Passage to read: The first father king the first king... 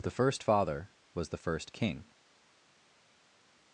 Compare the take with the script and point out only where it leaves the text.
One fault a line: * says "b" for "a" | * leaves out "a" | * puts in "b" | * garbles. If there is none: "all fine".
* says "was" for "king"